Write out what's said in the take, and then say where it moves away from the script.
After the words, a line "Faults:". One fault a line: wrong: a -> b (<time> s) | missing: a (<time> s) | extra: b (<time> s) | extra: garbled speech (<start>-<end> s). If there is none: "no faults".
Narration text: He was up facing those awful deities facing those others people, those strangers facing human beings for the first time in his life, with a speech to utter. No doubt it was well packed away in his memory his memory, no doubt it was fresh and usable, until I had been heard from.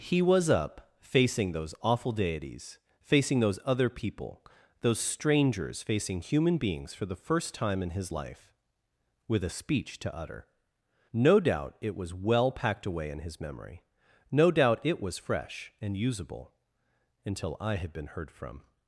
He was up facing those awful deities facing those other people, those strangers facing human beings for the first time in his life, with a speech to utter. No doubt it was well packed away in his memory, no doubt it was fresh and usable, until I had been heard from.
Faults:
wrong: others -> other (3.6 s)
missing: his memory (13.8 s)